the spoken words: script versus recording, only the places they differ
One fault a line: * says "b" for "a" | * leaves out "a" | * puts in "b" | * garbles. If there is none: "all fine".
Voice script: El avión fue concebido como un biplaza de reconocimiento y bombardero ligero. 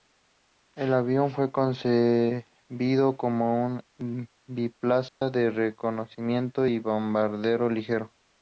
all fine